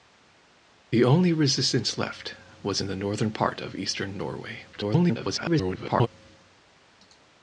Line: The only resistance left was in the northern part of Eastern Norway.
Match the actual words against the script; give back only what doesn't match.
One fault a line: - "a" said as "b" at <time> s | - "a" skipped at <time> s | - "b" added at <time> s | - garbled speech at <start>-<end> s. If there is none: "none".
- garbled speech at 4.7-6.1 s